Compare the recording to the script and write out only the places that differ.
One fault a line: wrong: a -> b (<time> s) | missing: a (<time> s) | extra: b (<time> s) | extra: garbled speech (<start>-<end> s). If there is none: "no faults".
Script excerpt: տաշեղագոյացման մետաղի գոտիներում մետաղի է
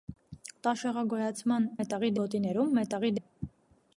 no faults